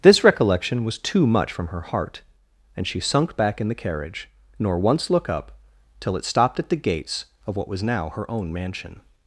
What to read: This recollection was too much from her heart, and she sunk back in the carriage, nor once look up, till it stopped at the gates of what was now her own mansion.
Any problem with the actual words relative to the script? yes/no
no